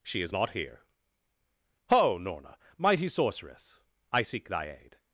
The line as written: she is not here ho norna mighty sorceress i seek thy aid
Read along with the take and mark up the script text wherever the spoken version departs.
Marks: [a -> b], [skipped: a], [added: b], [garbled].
she is not here ho norna mighty sorceress i seek thy aid